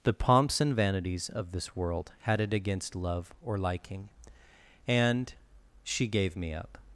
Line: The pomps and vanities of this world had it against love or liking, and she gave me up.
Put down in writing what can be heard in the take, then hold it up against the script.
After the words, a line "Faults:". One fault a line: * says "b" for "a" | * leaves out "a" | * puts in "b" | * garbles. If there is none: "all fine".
The pomps and vanities of this world had it against love or liking, and she gave me up.
Faults:
all fine